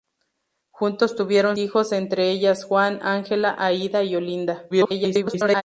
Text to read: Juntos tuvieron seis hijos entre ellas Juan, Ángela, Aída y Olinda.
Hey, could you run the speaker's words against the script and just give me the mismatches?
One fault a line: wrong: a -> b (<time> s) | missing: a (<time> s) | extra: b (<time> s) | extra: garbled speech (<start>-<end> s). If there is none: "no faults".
missing: seis (1.6 s)
extra: garbled speech (4.7-5.6 s)